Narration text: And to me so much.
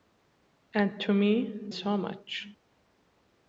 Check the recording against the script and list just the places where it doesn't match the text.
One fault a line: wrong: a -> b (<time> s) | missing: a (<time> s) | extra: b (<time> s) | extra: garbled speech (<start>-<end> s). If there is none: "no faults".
no faults